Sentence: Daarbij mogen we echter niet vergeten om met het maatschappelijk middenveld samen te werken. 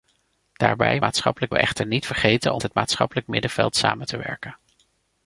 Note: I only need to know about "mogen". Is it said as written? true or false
false